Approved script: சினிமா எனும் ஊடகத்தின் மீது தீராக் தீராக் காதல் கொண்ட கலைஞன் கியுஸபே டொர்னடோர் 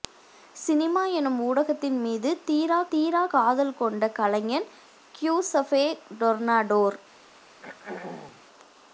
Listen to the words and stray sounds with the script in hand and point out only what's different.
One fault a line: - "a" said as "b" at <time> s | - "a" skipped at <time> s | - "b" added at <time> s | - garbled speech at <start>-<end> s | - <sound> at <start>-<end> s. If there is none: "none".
- throat clearing at 7.5-8.4 s